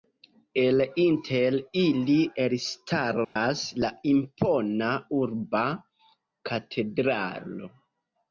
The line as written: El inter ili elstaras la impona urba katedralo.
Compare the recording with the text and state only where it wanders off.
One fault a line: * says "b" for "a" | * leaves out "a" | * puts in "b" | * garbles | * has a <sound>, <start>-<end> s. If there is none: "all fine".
* has a dropout, 3.2-3.4 s